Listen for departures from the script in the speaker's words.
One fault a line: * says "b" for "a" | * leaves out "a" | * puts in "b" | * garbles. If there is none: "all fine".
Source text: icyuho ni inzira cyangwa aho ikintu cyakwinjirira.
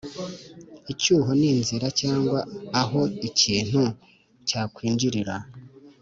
all fine